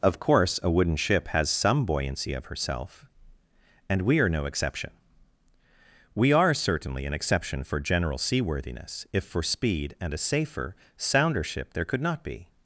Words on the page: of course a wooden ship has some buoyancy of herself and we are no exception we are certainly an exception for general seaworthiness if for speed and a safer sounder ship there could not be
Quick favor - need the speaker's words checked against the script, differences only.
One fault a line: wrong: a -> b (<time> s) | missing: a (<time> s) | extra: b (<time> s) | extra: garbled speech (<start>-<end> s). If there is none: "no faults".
no faults